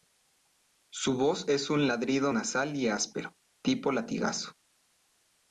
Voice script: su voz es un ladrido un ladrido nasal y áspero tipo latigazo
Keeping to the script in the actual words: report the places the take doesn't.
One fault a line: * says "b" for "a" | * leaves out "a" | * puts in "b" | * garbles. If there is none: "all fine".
* leaves out "un ladrido"